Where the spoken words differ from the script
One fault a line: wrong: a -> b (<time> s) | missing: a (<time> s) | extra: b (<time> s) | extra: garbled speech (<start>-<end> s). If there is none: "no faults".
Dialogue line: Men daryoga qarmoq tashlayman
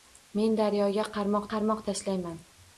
extra: qarmoq (1.5 s)